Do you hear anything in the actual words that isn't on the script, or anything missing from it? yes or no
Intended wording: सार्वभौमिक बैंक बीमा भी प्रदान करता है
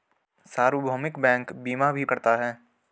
yes